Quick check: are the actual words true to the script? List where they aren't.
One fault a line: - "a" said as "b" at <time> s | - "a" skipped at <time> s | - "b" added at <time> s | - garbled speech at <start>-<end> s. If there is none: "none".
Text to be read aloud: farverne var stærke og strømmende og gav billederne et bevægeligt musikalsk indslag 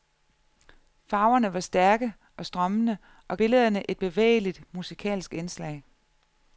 - "gav" skipped at 3.4 s